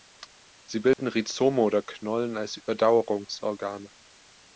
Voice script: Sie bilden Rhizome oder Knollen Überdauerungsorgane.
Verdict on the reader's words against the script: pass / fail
fail